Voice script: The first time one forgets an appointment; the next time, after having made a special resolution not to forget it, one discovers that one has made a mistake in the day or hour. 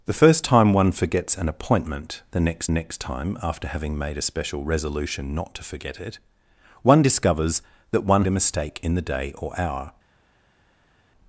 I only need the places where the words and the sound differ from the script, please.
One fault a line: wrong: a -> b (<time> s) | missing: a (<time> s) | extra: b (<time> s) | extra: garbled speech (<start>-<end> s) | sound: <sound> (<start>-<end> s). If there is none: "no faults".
extra: next (2.7 s)
missing: has made (8.3 s)